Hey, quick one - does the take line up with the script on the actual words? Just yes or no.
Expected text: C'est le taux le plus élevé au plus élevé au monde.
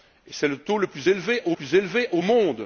yes